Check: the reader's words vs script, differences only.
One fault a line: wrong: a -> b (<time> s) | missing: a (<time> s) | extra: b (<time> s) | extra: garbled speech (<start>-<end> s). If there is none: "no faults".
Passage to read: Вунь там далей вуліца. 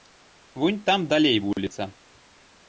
no faults